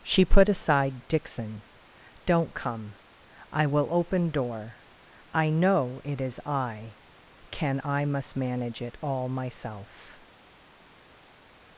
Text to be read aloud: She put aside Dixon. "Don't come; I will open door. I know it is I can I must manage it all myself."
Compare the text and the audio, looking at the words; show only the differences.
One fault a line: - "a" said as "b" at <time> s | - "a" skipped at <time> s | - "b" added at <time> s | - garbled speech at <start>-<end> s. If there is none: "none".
none